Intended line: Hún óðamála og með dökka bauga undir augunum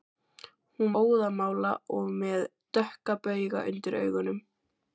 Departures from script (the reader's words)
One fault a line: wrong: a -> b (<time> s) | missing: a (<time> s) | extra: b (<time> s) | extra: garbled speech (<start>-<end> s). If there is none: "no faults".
no faults